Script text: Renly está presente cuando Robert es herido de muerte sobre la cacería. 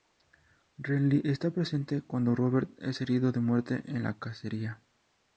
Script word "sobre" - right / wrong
wrong